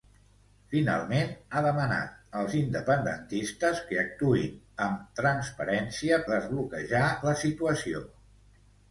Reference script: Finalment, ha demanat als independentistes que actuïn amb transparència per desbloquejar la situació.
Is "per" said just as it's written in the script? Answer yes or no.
no